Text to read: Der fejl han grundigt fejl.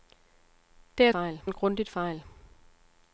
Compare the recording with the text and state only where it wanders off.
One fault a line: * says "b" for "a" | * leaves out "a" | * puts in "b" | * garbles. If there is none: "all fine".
all fine